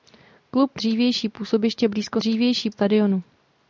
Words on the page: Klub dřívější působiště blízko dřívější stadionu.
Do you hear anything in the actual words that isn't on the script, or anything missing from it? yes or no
no